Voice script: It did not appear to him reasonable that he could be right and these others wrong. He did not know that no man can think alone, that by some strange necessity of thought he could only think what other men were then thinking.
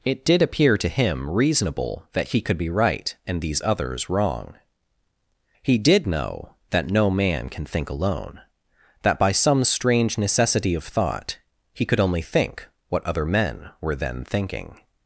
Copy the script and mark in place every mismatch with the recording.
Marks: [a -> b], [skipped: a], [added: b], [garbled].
It did [skipped: not] appear to him reasonable that he could be right and these others wrong. He did [skipped: not] know that no man can think alone, that by some strange necessity of thought he could only think what other men were then thinking.